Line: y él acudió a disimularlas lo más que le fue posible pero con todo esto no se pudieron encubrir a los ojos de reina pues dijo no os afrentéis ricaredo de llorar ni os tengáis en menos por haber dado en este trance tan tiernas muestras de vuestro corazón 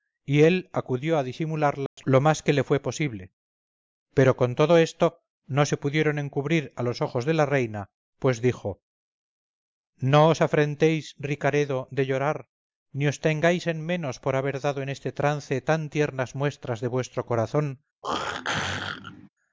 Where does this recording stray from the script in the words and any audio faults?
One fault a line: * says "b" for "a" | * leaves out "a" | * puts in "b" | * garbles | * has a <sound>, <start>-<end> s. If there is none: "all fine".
* has a dropout, 1.9-2.0 s
* puts in "la"
* has a throat clearing, 18.0-19.3 s